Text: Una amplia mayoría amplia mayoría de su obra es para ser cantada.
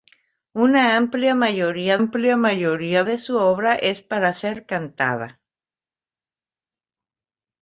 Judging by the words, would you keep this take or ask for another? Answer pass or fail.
pass